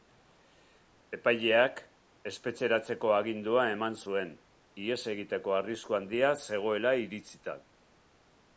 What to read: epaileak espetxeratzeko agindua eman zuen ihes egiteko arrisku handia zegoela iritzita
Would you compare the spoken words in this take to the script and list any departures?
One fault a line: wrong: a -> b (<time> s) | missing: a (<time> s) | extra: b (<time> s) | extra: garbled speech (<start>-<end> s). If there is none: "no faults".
no faults